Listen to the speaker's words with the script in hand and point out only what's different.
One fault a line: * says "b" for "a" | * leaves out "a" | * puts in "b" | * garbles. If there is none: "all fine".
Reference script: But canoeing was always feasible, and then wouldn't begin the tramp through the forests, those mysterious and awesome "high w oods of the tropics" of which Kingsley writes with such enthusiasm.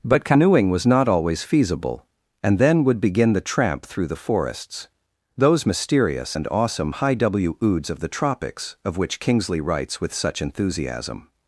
* puts in "not"
* says "would" for "wouldn't"